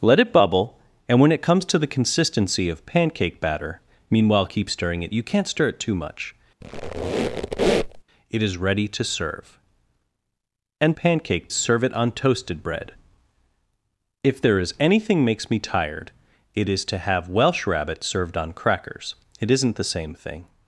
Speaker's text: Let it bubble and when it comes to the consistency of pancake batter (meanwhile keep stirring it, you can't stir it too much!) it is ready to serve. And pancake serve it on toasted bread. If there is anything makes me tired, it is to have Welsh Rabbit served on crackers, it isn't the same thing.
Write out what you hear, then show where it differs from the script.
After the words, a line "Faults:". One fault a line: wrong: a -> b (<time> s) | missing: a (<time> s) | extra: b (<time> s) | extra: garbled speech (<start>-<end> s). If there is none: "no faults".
Let it bubble and when it comes to the consistency of pancake batter (meanwhile keep stirring it, you can't stir it too much!) it is ready to serve. And pancake serve it on toasted bread. If there is anything makes me tired, it is to have Welsh Rabbit served on crackers, it isn't the same thing.
Faults:
no faults